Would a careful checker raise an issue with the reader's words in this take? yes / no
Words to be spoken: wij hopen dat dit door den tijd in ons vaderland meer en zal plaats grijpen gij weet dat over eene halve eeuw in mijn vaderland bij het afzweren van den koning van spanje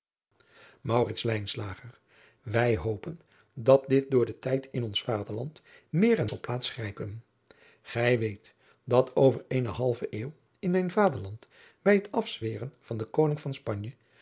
no